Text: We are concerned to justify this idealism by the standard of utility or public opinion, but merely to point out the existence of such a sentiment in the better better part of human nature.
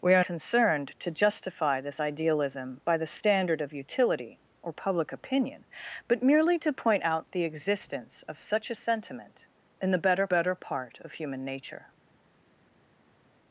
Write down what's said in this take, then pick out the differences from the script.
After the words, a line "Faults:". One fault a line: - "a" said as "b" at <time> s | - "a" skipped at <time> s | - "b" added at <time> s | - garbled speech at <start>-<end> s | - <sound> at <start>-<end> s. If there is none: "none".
We are concerned to justify this idealism by the standard of utility or public opinion, but merely to point out the existence of such a sentiment in the better better part of human nature.
Faults:
none